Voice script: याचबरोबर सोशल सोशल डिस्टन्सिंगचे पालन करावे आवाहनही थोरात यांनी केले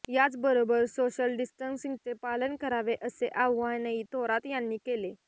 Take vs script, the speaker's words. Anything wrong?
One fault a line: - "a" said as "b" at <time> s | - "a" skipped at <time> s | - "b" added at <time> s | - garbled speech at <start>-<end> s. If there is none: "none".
- "सोशल" skipped at 1.4 s
- "असे" added at 3.0 s